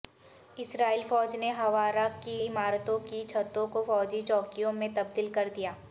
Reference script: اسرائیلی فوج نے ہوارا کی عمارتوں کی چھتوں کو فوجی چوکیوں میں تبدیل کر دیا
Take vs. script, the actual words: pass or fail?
pass